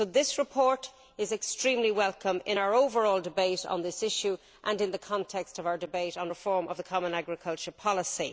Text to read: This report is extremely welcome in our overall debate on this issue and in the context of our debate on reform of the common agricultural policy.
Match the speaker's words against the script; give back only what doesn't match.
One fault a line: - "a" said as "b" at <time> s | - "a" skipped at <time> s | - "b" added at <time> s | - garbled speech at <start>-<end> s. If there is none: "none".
none